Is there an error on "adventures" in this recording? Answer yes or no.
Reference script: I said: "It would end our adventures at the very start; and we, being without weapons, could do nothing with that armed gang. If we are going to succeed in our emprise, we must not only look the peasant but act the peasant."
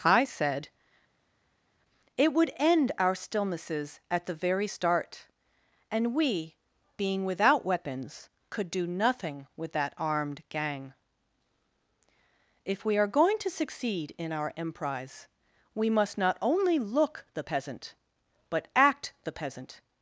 yes